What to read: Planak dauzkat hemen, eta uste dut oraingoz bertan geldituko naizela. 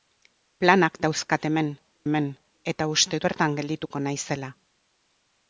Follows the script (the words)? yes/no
no